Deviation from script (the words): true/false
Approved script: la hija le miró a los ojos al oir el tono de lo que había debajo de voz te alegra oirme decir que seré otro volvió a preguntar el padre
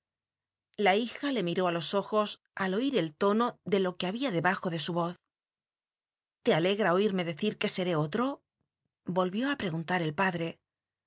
true